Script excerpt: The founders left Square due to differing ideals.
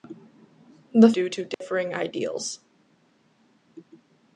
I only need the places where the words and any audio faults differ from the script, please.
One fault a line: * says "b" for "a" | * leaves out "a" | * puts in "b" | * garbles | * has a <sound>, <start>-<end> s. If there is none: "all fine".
* leaves out "founders left Square"
* has a dropout, 1.5-1.6 s